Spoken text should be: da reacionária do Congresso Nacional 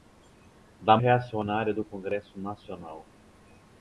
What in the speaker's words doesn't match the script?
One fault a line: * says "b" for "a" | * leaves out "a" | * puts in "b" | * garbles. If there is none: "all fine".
all fine